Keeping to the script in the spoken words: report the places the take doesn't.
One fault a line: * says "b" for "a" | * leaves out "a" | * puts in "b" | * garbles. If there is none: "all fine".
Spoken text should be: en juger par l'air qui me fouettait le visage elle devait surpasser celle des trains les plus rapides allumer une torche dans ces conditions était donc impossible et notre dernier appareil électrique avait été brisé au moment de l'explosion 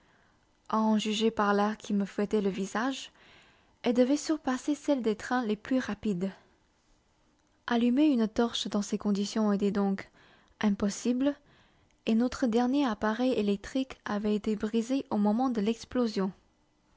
all fine